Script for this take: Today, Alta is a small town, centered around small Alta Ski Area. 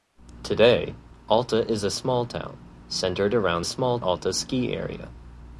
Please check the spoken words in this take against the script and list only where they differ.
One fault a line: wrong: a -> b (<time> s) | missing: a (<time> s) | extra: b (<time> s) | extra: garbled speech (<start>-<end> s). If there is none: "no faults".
no faults